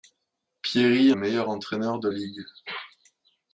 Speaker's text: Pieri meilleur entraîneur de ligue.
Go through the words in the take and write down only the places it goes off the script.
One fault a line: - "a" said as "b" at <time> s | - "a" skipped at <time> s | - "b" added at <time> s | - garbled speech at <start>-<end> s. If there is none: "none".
none